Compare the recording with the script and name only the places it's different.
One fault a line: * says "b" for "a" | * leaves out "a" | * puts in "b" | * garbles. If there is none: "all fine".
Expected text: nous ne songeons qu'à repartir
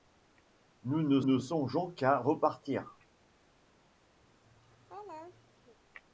* puts in "ne"